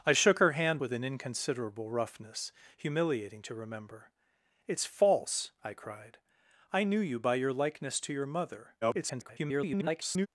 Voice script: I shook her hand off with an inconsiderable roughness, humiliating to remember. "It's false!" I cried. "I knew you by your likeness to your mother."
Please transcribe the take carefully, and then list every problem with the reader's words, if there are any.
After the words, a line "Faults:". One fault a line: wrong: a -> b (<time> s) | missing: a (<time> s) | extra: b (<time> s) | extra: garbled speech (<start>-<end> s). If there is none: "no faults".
I shook her hand with an inconsiderable roughness, humiliating to remember. "It's false!" I cried. "I knew you by your likeness to your mother." [garbled]
Faults:
missing: off (0.8 s)
extra: garbled speech (8.8-10.3 s)